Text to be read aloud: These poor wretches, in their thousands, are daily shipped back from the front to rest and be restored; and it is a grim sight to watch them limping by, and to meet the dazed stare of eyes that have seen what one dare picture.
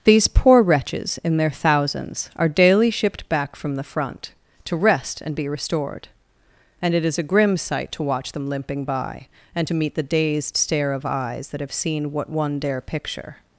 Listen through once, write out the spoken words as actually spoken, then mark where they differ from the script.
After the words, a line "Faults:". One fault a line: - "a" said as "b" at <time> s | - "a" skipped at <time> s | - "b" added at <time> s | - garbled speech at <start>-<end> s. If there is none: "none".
These poor wretches, in their thousands, are daily shipped back from the front to rest and be restored; and it is a grim sight to watch them limping by, and to meet the dazed stare of eyes that have seen what one dare picture.
Faults:
none